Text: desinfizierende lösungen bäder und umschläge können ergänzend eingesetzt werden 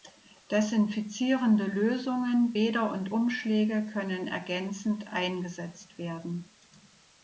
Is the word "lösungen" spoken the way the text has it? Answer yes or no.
yes